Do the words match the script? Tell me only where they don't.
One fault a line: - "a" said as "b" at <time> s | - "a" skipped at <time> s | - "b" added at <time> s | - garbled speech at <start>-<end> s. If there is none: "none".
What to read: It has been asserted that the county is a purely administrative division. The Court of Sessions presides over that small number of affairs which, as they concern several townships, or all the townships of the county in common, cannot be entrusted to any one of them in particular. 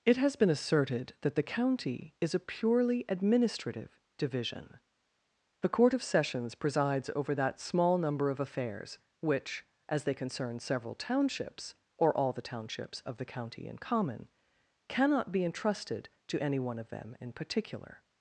none